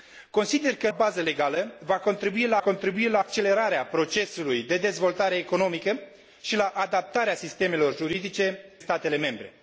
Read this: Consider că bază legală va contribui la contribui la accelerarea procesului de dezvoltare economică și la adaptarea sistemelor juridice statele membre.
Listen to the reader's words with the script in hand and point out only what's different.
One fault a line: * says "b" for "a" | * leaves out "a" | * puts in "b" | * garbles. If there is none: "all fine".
all fine